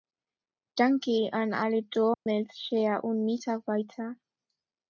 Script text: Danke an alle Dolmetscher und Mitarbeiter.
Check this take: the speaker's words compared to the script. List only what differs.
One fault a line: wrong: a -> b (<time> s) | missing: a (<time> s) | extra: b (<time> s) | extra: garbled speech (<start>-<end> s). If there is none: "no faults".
no faults